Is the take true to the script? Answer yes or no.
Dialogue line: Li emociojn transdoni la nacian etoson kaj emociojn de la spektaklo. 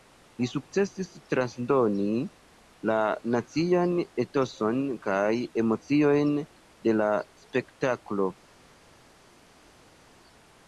no